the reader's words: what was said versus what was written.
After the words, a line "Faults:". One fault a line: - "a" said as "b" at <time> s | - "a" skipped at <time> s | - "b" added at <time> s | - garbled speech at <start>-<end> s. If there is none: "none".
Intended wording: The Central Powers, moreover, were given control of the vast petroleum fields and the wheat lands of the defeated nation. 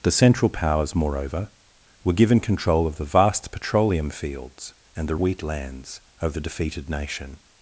The Central Powers, moreover, were given control of the vast petroleum fields and the wheat lands of the defeated nation.
Faults:
none